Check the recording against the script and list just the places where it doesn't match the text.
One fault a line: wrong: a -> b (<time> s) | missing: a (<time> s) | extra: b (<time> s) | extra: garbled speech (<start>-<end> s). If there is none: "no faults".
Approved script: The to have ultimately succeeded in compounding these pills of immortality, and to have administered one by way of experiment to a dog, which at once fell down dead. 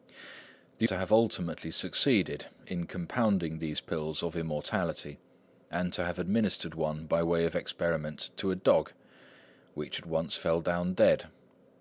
no faults